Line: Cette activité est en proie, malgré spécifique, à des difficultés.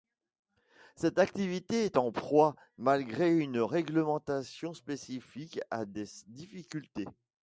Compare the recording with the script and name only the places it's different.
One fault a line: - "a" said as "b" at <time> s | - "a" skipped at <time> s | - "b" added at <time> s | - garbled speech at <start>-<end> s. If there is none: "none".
- "une réglementation" added at 3.4 s